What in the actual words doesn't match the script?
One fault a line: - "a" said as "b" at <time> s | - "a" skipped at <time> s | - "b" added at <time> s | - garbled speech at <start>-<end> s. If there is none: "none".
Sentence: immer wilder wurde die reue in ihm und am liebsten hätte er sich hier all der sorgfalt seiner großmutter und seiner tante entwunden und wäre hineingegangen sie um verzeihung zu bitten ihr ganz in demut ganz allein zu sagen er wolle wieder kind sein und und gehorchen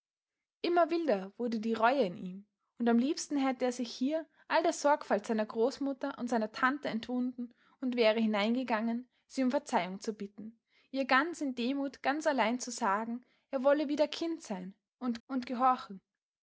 none